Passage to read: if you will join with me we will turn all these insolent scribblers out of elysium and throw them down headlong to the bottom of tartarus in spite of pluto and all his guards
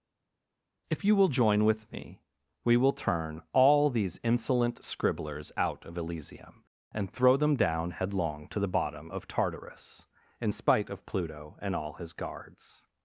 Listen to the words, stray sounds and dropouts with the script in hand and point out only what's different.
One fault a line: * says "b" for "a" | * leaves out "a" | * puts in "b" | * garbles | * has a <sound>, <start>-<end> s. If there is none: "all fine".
all fine